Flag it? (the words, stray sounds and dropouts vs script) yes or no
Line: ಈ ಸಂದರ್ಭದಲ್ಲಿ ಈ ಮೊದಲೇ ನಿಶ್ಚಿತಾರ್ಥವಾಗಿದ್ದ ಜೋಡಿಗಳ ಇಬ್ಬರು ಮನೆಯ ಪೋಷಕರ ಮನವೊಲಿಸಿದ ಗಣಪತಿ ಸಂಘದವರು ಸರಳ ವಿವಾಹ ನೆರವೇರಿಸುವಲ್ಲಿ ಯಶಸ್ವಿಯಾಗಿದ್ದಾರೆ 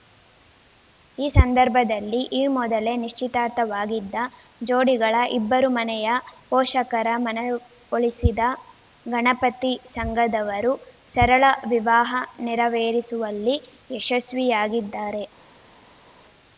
no